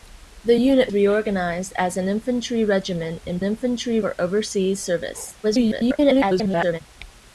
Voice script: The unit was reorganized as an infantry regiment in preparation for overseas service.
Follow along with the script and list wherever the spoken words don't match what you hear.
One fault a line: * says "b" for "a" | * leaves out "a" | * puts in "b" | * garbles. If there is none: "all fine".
* leaves out "was"
* says "infantry" for "preparation"
* garbles